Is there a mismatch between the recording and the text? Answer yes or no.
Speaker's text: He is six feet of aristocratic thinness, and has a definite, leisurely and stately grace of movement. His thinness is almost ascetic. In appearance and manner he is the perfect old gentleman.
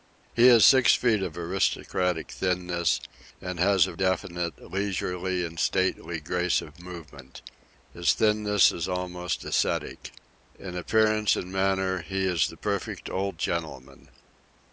no